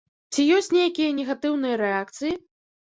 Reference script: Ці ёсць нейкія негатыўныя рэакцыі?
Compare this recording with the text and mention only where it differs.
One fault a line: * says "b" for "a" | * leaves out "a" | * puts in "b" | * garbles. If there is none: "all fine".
all fine